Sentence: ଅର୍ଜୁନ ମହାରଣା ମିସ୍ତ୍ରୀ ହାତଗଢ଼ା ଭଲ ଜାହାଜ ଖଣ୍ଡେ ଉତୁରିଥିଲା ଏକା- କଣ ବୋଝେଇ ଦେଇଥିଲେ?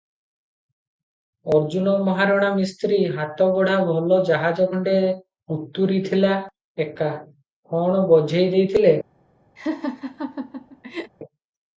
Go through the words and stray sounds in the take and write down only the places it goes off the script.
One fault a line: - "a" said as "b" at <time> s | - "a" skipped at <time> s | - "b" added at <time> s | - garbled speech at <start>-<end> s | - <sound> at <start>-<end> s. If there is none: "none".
- laugh at 9.6-11.1 s